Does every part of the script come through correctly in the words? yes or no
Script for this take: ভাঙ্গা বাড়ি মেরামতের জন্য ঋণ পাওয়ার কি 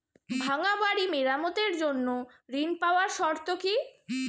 no